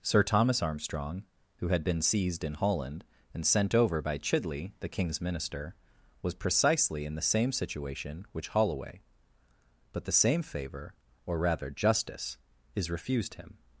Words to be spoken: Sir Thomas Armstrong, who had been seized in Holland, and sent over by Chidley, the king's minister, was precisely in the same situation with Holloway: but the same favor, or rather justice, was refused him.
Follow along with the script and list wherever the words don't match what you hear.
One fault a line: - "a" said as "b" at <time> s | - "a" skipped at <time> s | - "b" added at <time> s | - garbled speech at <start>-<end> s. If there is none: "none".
- "with" said as "which" at 8.3 s
- "was" said as "is" at 12.8 s